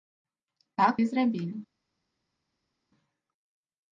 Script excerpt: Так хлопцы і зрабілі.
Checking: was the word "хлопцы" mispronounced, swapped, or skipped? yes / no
yes